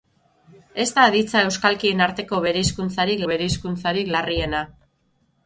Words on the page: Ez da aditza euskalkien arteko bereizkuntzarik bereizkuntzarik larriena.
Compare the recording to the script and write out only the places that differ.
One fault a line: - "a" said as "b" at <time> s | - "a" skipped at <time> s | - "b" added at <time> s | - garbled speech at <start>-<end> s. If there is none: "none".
none